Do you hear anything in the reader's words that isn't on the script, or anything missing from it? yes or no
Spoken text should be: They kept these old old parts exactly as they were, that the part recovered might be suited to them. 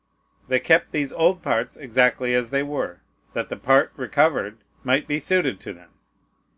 yes